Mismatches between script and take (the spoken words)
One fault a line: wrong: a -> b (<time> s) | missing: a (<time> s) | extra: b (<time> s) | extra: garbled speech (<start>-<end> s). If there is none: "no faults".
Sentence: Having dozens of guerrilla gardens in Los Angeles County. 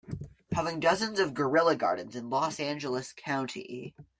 no faults